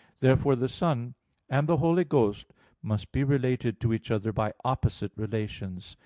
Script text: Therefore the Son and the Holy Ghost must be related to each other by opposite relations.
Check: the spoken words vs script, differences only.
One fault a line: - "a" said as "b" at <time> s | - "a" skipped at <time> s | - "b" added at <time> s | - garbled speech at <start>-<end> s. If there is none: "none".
none